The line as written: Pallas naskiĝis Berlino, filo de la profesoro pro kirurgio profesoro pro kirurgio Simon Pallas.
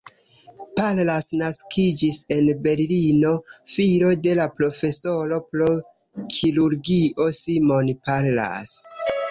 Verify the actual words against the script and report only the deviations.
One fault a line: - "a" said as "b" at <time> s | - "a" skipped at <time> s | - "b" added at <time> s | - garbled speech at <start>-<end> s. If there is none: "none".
- "en" added at 2.4 s
- "profesoro pro kirurgio" skipped at 7.3 s